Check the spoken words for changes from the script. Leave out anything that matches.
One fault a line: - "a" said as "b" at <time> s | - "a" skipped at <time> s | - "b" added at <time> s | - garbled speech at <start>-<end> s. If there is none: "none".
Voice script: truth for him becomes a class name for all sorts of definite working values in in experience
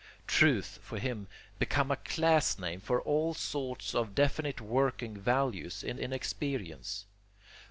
none